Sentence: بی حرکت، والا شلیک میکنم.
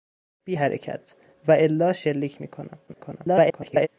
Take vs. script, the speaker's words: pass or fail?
fail